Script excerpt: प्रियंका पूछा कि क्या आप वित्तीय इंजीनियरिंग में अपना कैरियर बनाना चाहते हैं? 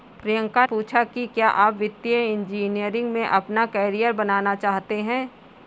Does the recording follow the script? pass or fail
pass